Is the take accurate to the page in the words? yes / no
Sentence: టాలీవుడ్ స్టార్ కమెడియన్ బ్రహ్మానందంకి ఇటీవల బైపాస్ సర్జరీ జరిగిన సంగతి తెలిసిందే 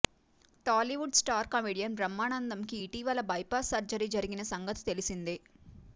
yes